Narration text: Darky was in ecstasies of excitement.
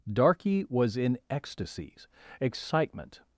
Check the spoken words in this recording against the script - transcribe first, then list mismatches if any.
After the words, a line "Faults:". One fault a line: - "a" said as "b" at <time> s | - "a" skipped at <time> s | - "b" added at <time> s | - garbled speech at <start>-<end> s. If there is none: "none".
Darky was in ecstasies excitement.
Faults:
- "of" skipped at 2.1 s